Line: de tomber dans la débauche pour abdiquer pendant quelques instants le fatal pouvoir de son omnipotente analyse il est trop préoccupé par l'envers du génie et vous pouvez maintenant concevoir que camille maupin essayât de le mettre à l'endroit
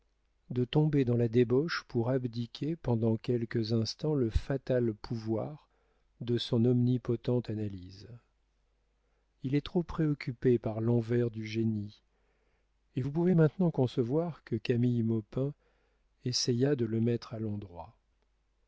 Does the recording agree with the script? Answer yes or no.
yes